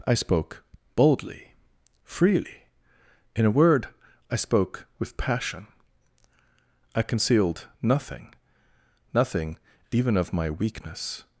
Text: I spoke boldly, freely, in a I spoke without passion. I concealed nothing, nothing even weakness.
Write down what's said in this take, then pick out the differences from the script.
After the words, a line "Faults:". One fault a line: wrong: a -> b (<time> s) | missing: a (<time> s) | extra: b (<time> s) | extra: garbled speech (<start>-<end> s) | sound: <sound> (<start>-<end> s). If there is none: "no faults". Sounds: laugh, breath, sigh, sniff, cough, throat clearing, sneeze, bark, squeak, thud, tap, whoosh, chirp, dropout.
I spoke boldly, freely, in a word, I spoke with passion. I concealed nothing, nothing even of my weakness.
Faults:
extra: word (3.5 s)
wrong: without -> with (5.0 s)
extra: of my (10.2 s)